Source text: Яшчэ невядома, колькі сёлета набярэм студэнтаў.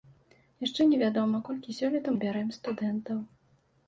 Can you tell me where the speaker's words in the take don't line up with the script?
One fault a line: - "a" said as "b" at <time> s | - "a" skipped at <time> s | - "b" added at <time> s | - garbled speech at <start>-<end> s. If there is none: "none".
none